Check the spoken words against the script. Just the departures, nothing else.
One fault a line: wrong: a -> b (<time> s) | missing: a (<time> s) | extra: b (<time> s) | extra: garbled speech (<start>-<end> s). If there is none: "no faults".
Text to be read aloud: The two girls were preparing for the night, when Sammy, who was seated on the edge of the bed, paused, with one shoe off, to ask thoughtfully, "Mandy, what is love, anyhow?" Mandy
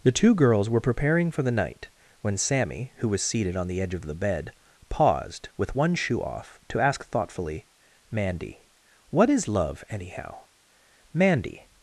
no faults